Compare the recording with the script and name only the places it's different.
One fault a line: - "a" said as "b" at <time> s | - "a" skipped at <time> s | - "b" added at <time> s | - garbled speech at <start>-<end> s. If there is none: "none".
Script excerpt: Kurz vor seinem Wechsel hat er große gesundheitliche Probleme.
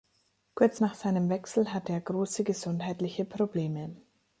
- "vor" said as "nach" at 0.8 s
- "hat" said as "hatte" at 1.7 s